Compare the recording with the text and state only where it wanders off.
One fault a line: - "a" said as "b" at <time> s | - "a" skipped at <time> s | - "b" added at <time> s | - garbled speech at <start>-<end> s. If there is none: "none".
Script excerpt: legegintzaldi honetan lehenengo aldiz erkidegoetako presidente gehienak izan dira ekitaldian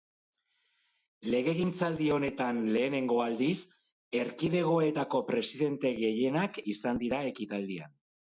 none